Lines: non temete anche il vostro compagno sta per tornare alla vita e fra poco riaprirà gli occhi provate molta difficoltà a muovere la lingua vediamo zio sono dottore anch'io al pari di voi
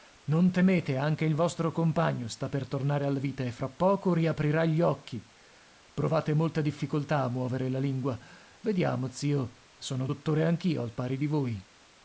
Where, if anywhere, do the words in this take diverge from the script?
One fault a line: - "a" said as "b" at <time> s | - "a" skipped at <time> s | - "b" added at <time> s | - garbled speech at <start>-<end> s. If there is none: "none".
none